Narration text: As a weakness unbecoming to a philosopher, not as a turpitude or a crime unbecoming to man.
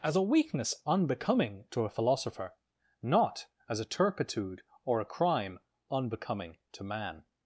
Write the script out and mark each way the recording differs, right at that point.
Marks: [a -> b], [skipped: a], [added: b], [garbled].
As a weakness unbecoming to a philosopher, not as a turpitude or a crime unbecoming to man.